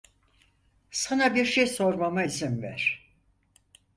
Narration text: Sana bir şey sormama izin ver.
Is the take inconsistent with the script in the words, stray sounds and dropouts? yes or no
no